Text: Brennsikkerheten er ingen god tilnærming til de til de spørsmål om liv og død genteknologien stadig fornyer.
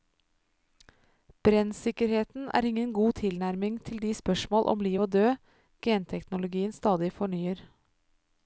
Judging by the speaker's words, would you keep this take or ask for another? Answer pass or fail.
fail